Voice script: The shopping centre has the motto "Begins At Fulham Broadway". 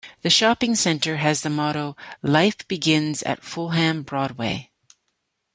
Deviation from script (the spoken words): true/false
true